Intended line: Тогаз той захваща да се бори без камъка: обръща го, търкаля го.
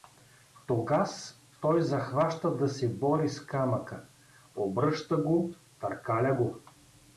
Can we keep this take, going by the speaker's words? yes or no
no